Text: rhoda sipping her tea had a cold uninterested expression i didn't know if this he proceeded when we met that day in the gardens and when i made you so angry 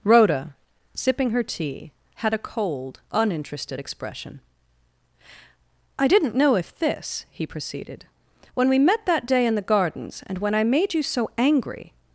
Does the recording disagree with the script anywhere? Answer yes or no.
no